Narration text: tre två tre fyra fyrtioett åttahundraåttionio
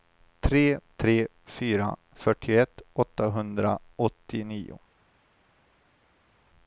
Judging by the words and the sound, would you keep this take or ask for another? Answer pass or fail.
fail